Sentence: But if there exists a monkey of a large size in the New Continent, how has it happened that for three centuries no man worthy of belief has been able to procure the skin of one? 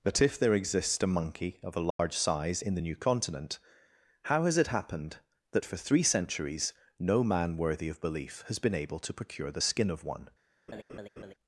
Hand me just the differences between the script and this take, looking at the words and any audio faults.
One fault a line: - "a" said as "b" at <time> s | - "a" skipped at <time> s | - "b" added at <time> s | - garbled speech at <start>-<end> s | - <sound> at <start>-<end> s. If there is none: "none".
- dropout at 1.9-2.0 s
- laugh at 10.7-11.3 s